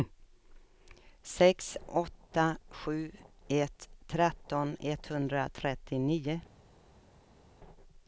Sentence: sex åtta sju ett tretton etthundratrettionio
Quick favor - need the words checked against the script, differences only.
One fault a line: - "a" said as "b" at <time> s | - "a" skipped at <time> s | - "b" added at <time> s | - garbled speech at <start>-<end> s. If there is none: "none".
none